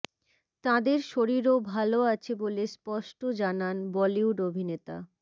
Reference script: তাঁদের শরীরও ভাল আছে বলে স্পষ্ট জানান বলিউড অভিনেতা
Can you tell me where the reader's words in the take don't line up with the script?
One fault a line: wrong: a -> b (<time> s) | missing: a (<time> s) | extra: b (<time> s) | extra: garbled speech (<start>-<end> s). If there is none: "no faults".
no faults